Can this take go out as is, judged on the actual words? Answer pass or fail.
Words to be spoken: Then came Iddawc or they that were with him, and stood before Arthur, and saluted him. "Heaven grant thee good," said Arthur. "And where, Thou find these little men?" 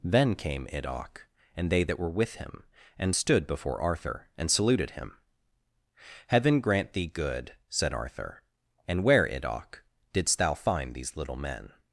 fail